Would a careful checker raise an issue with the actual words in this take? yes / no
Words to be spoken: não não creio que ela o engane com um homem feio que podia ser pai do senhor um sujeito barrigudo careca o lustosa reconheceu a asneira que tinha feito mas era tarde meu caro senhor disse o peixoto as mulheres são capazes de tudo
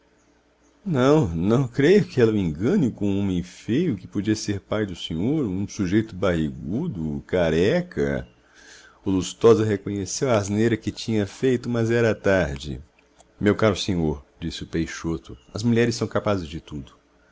no